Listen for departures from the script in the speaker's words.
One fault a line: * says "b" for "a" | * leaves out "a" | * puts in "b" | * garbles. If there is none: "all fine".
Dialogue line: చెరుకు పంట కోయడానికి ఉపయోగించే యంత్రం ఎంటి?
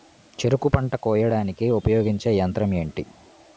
all fine